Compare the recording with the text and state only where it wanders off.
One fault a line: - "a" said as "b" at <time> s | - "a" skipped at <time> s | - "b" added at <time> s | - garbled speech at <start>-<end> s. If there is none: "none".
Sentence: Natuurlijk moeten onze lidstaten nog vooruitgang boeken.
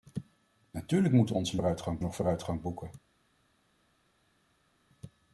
- "lidstaten" said as "vooruitgang" at 1.5 s